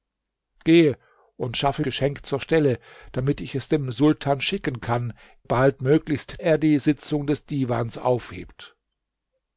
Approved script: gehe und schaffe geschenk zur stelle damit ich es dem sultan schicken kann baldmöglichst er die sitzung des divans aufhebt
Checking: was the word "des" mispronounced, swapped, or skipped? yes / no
no